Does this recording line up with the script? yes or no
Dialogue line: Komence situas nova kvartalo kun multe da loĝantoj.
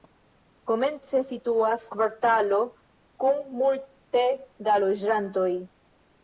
no